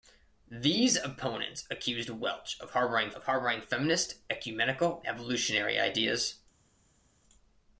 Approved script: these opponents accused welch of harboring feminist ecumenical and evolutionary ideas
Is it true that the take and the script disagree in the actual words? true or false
true